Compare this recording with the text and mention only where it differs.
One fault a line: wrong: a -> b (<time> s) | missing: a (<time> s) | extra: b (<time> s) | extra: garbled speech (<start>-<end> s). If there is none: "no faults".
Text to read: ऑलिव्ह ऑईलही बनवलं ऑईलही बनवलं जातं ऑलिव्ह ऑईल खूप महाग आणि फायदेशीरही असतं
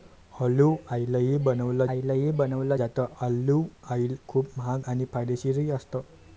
no faults